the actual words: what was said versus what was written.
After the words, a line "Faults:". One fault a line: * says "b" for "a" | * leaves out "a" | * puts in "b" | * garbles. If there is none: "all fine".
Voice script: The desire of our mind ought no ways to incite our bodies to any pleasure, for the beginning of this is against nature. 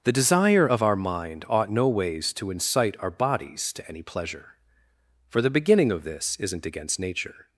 The desire of our mind ought no ways to incite our bodies to any pleasure, for the beginning of this isn't against nature.
Faults:
* says "isn't" for "is"